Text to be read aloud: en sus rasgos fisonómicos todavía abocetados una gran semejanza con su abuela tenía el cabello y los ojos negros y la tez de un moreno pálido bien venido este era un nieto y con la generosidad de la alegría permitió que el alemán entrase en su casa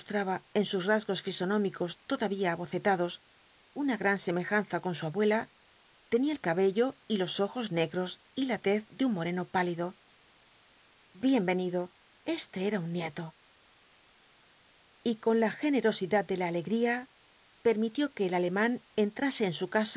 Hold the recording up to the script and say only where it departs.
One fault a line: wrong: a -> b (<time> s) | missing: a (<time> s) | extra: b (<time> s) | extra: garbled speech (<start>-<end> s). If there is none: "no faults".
no faults